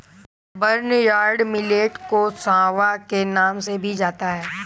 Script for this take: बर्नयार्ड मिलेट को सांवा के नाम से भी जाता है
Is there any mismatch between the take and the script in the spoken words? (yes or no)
no